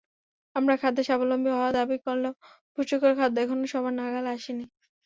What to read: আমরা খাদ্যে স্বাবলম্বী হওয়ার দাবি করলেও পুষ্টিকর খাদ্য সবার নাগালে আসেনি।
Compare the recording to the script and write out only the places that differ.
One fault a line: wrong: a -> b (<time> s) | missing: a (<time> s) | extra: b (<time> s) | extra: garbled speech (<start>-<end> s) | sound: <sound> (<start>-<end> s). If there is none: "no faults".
extra: এখনো (3.4 s)